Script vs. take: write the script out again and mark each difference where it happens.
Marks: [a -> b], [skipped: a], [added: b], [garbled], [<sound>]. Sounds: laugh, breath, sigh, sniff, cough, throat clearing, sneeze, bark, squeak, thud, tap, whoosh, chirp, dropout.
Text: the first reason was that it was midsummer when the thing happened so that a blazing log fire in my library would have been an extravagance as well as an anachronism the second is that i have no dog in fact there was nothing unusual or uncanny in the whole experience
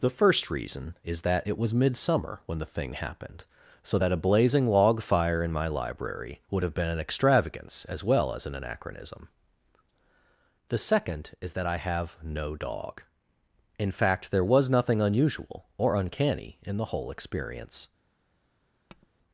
the first reason [was -> is] that it was midsummer when the thing happened so that a blazing log fire in my library would have been an extravagance as well as an anachronism the second is that i have no dog in fact there was nothing unusual or uncanny in the whole experience [tap]